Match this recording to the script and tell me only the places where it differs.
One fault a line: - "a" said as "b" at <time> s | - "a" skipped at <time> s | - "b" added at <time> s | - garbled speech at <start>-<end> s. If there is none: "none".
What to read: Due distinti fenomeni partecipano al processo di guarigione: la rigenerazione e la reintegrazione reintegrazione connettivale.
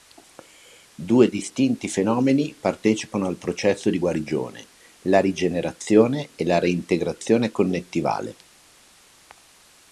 - "reintegrazione" skipped at 7.5 s